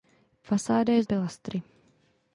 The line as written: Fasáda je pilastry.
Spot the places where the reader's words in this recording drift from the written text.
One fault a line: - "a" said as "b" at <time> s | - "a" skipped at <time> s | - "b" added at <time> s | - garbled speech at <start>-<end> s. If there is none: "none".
none